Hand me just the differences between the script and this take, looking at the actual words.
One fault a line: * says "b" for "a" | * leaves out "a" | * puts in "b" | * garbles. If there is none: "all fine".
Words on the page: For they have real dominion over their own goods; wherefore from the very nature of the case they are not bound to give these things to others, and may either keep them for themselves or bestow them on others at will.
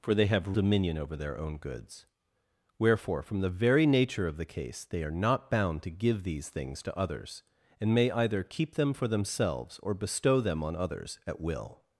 * leaves out "real"